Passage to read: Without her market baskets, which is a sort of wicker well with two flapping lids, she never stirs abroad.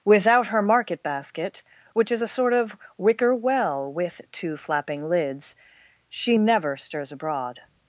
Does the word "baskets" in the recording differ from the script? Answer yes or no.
yes